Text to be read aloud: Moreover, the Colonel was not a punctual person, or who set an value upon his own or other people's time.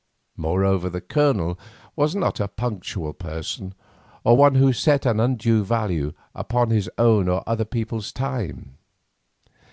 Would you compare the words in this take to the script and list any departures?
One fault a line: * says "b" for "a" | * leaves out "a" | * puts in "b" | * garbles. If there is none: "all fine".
* puts in "one"
* puts in "undue"